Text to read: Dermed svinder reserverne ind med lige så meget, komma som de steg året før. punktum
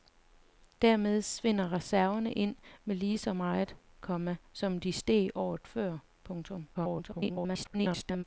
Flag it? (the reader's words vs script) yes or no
yes